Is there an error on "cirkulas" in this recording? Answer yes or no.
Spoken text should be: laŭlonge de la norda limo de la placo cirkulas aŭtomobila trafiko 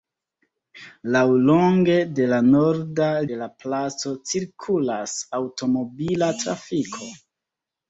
no